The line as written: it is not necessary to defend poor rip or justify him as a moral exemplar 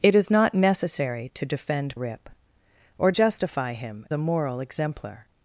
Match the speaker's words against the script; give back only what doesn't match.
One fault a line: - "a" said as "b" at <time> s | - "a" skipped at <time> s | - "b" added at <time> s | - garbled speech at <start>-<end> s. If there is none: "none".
- "poor" skipped at 1.9 s
- "as" skipped at 4.0 s